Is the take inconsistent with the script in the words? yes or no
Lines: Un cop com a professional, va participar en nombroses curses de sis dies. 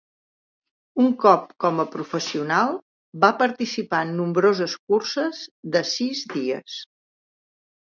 no